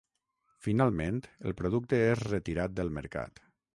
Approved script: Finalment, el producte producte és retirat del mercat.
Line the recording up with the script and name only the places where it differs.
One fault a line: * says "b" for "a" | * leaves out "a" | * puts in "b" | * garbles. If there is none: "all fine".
* leaves out "producte"